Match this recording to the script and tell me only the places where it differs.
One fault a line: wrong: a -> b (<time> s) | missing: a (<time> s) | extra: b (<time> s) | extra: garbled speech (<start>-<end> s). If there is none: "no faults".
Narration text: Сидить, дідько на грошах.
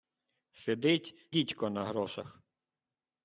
no faults